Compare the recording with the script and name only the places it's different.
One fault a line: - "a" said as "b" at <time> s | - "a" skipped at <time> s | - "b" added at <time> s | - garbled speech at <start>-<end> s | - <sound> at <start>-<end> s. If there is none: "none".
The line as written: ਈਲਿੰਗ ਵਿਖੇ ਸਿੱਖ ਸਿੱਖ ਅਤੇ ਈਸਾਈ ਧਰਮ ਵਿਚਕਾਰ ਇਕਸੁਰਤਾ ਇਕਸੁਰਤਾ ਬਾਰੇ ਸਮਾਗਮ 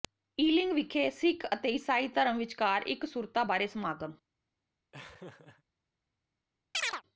- "ਸਿੱਖ" skipped at 1.4 s
- "ਇਕਸੁਰਤਾ" skipped at 3.4 s
- laugh at 4.9-5.6 s
- chirp at 6.7-7.0 s